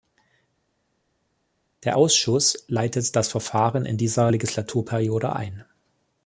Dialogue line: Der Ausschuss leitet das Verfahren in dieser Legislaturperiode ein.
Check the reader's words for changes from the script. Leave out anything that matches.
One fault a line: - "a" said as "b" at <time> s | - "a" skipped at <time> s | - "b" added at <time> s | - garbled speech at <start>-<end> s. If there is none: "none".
none